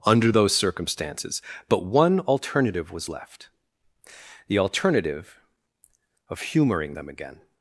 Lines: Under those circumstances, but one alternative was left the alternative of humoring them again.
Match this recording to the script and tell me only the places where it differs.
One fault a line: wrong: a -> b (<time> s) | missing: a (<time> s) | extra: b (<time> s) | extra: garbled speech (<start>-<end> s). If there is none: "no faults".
no faults